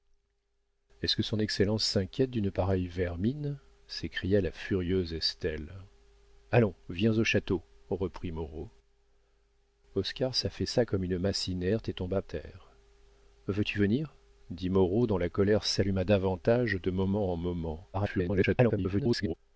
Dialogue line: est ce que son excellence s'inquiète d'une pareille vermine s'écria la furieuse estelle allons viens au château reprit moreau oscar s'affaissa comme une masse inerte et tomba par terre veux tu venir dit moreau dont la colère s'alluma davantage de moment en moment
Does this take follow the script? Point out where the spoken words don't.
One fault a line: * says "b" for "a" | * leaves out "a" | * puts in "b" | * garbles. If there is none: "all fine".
* leaves out "par"
* garbles